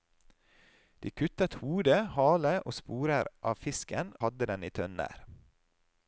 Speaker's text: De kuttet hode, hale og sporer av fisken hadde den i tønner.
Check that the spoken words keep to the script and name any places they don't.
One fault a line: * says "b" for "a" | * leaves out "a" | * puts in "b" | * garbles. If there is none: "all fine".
all fine